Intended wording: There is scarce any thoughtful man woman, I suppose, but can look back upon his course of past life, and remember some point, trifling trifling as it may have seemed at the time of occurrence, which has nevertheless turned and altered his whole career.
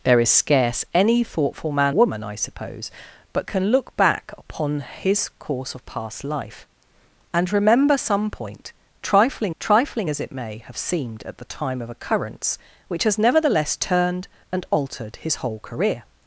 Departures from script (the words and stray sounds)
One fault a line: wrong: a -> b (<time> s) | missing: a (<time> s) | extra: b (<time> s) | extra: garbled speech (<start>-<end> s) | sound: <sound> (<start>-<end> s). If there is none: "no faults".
no faults